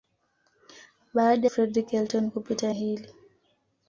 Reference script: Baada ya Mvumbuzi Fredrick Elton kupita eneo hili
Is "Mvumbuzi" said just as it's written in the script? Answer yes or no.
no